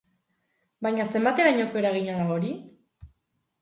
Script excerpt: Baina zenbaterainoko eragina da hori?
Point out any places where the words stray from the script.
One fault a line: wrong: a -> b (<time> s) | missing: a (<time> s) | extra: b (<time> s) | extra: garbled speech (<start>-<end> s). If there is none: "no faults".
no faults